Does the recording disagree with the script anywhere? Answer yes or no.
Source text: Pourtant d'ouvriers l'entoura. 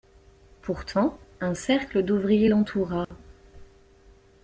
yes